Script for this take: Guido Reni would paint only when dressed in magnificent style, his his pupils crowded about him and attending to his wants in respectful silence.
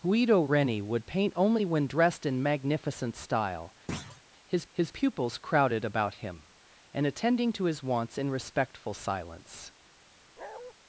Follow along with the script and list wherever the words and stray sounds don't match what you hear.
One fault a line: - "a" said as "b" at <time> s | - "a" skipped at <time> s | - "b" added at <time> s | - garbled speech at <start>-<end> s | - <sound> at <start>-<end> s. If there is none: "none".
- thud at 3.9-4.2 s
- bark at 10.4-10.7 s